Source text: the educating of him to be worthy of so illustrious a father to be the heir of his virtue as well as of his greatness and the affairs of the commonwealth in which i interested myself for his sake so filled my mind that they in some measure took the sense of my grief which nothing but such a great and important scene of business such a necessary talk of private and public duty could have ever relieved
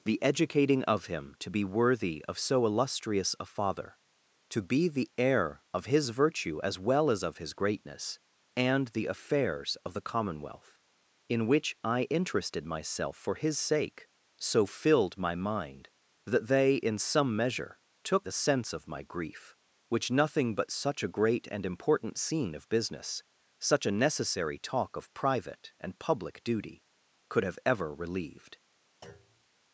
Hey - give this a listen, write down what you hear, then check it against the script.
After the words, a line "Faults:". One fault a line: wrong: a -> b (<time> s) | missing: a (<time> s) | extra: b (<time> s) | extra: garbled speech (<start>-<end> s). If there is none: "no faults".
the educating of him to be worthy of so illustrious a father to be the heir of his virtue as well as of his greatness and the affairs of the commonwealth in which i interested myself for his sake so filled my mind that they in some measure took the sense of my grief which nothing but such a great and important scene of business such a necessary talk of private and public duty could have ever relieved
Faults:
no faults